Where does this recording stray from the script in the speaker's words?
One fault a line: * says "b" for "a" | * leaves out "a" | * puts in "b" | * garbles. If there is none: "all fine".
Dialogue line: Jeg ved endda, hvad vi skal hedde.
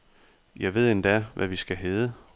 all fine